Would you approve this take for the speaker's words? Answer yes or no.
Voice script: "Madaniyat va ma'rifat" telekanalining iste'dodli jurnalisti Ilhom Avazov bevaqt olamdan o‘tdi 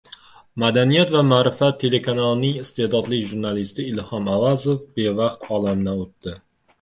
yes